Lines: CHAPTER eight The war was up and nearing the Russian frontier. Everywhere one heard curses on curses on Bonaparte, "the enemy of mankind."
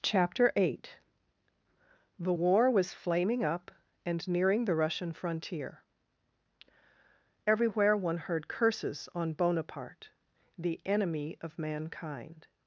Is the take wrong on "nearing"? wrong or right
right